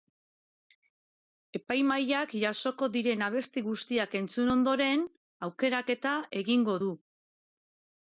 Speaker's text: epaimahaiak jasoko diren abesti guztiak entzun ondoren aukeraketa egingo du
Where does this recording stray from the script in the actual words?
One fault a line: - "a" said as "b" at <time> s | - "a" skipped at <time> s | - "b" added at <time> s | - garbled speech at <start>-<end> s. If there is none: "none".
none